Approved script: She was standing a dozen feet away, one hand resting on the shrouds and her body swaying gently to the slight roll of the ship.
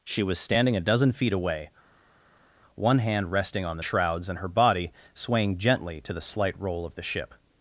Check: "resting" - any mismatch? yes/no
no